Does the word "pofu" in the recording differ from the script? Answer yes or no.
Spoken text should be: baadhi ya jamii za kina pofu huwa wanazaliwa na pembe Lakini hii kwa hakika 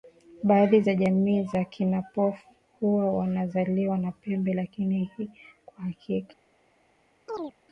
no